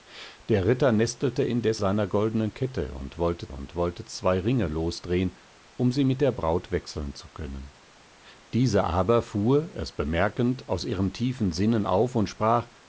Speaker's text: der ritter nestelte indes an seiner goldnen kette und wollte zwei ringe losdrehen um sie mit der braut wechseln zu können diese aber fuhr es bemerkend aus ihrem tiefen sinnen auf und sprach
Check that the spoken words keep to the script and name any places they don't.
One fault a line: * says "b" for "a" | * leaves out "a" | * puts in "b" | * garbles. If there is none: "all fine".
* leaves out "an"
* puts in "und wollte"